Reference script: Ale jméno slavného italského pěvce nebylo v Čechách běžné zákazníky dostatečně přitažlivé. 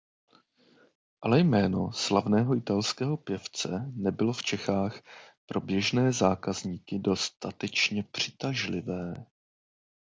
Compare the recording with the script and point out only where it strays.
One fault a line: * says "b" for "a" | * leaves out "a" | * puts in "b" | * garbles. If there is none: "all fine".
* puts in "pro"